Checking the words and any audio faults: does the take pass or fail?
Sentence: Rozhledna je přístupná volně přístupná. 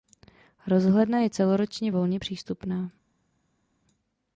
fail